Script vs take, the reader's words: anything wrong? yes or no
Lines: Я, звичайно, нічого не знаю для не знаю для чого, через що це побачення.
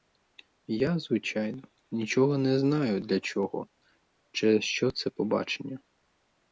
yes